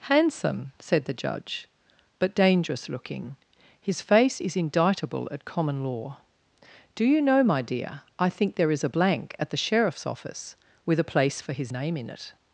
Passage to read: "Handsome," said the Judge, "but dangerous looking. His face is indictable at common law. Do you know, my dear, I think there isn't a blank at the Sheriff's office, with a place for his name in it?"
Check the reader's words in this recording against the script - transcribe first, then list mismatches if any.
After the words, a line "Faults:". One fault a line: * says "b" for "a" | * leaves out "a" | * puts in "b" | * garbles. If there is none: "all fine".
"Handsome," said the Judge, "but dangerous looking. His face is indictable at common law. Do you know, my dear, I think there is a blank at the Sheriff's office, with a place for his name in it?"
Faults:
* says "is" for "isn't"